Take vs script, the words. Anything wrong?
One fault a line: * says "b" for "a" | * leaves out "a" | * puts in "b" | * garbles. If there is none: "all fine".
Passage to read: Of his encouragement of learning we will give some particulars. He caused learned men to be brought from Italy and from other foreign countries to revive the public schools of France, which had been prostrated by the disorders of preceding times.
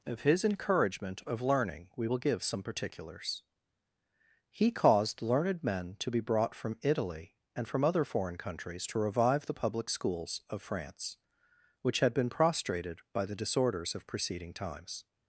all fine